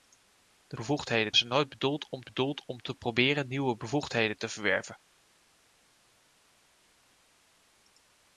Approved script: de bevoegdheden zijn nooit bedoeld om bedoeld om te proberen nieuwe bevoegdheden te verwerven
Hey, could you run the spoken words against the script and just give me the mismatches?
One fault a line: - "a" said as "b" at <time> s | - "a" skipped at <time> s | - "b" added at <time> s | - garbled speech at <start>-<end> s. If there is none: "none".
none